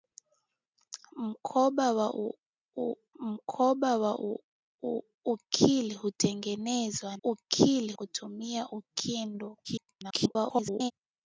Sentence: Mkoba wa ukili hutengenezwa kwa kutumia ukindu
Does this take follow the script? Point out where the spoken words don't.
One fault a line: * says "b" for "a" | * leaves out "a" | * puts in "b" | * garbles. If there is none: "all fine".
* puts in "mkoba wa"
* says "ukili" for "kwa"
* garbles